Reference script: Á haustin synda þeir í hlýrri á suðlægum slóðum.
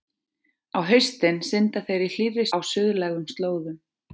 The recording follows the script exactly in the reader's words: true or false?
true